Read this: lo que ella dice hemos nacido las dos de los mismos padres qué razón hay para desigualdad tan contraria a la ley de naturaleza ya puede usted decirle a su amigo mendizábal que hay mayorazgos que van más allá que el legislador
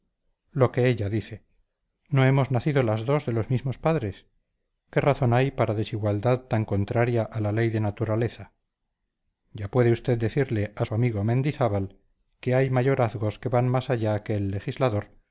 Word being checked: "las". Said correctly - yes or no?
yes